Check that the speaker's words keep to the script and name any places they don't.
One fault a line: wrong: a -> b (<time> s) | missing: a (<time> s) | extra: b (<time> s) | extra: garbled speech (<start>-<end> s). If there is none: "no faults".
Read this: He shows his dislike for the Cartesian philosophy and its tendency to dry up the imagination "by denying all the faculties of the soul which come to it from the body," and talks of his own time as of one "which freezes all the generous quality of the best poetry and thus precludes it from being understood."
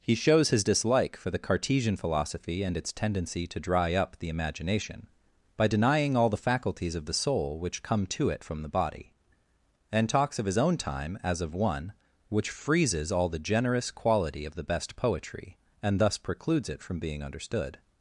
no faults